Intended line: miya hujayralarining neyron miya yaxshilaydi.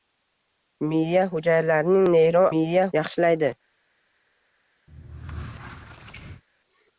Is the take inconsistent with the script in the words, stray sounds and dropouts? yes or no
yes